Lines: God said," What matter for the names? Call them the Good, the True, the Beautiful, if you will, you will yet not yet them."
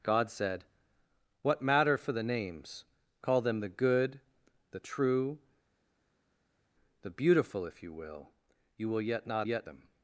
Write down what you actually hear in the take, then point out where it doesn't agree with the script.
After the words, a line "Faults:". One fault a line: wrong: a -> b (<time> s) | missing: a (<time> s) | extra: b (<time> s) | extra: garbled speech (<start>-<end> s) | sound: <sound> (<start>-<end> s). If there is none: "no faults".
God said," What matter for the names? Call them the Good, the True, the Beautiful, if you will, you will yet not yet them."
Faults:
no faults